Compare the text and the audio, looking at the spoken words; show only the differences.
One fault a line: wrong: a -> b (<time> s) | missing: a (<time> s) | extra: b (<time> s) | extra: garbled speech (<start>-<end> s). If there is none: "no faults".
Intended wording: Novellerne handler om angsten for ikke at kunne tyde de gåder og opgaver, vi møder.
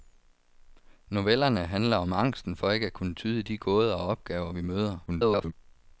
extra: garbled speech (5.1-5.5 s)